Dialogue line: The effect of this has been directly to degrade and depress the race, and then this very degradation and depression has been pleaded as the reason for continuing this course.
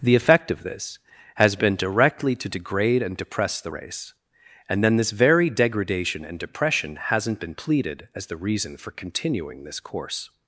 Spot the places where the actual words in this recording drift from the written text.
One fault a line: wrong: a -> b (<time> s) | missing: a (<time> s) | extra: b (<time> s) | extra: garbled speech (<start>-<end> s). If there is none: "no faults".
wrong: has -> hasn't (7.0 s)